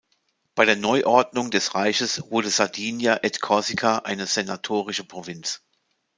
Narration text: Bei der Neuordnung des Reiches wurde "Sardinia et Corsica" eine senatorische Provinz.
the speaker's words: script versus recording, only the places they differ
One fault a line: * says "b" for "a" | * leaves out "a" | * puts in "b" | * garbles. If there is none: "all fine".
all fine